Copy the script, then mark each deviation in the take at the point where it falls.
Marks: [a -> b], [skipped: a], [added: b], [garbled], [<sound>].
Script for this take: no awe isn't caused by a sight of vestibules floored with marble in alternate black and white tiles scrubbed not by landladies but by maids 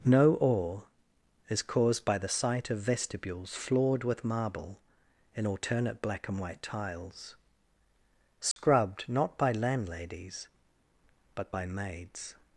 no awe [isn't -> is] caused by [a -> the] sight of vestibules floored with marble in alternate black and white tiles scrubbed [dropout] not by landladies but by maids